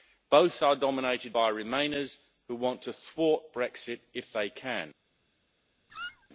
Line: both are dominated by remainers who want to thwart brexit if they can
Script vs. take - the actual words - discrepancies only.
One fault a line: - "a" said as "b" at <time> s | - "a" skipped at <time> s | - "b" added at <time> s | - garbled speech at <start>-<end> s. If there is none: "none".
none